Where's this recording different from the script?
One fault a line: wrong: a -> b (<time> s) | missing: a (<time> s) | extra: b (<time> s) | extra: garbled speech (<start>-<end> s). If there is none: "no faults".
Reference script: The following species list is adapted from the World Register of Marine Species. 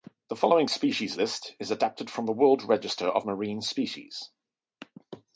no faults